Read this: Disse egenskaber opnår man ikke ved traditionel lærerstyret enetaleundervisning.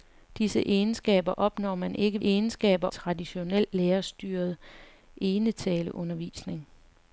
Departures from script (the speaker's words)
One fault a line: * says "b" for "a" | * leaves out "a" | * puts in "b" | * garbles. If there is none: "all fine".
* says "egenskaber" for "ved"